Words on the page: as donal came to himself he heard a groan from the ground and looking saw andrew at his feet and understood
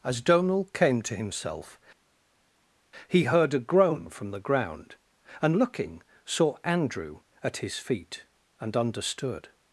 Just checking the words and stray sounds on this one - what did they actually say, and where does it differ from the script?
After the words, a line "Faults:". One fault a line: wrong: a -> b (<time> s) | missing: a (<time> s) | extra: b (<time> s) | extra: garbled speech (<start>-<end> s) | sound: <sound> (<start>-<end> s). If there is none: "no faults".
as donal came to himself he heard a groan from the ground and looking saw andrew at his feet and understood
Faults:
no faults